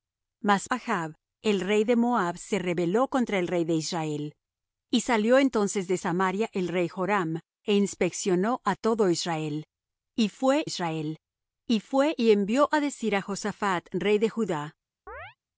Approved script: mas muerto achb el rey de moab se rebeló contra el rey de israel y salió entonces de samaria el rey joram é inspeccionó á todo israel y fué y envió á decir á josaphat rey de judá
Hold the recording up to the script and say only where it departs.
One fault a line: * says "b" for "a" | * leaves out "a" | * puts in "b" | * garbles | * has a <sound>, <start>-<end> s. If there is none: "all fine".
* leaves out "muerto"
* puts in "israel y fué"
* has a chirp, 15.1-15.4 s